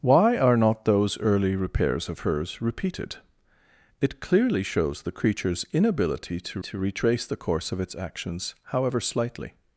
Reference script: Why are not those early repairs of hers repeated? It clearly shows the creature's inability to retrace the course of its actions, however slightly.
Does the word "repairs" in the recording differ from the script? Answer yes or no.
no